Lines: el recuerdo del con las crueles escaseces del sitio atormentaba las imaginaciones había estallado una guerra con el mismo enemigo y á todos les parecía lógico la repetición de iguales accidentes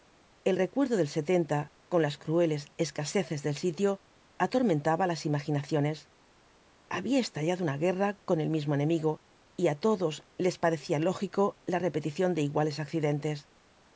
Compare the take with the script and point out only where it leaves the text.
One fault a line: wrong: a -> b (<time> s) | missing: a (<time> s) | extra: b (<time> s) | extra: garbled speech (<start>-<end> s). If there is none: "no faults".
no faults